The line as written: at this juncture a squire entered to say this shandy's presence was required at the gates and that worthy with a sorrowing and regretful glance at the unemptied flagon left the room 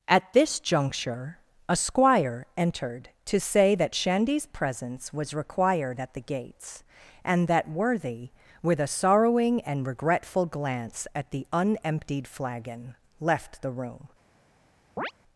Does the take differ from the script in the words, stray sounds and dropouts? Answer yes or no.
yes